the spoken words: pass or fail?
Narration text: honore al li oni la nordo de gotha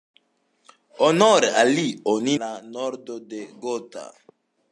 pass